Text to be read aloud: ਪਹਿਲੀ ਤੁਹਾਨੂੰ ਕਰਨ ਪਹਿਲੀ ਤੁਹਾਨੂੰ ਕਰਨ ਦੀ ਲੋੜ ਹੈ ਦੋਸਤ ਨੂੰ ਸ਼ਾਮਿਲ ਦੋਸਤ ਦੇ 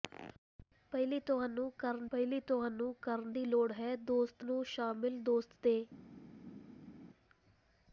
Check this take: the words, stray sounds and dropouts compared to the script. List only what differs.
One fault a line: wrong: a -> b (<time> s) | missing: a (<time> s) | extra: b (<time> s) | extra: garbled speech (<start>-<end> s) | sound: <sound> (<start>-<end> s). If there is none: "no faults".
no faults